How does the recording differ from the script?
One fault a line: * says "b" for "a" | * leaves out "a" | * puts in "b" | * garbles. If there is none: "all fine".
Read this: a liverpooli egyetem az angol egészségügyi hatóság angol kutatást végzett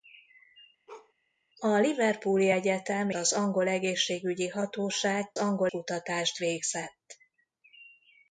all fine